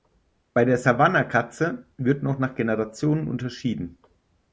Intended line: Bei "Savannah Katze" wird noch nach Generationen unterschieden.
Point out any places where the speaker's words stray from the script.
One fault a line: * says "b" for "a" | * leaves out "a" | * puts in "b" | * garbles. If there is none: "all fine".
* puts in "der"